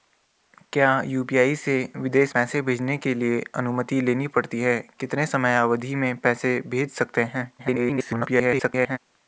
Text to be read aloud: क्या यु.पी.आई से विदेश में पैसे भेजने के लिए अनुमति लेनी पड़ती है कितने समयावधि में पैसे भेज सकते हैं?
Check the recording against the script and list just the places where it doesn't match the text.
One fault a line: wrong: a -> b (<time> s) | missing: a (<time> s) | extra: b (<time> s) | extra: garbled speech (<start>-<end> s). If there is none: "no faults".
missing: में (2.3 s)
extra: garbled speech (7.6-9.0 s)